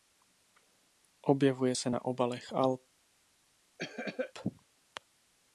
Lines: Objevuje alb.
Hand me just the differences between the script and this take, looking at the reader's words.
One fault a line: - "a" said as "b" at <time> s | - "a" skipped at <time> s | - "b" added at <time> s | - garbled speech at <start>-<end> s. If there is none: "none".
- "se na obalech" added at 1.7 s